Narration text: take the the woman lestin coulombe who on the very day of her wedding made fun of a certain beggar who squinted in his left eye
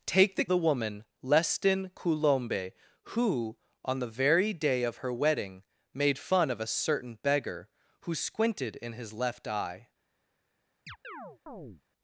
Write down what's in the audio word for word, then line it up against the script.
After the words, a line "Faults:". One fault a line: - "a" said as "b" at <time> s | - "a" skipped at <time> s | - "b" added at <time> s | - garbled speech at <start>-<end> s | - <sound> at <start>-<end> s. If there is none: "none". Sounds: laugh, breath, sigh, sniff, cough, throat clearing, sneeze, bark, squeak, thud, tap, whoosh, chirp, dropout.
take the the woman lestin coulombe who on the very day of her wedding made fun of a certain beggar who squinted in his left eye
Faults:
- chirp at 10.9-11.8 s